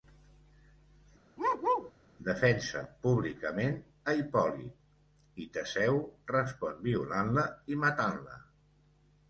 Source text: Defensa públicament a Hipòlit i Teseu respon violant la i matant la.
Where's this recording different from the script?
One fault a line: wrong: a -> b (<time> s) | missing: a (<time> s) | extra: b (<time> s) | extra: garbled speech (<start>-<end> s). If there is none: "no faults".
no faults